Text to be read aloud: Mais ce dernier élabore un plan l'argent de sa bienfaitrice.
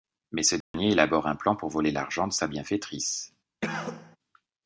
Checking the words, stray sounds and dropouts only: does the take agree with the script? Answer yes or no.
no